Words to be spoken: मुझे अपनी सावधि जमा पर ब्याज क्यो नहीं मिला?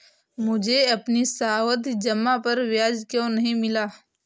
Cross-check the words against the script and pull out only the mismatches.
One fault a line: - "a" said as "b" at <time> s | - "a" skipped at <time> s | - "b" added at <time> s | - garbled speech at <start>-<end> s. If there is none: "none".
none